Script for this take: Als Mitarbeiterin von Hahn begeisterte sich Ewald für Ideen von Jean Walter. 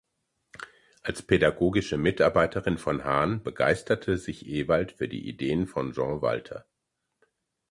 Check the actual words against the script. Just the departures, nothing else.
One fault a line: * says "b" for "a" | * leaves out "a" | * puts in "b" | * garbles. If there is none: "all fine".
* puts in "pädagogische"
* puts in "die"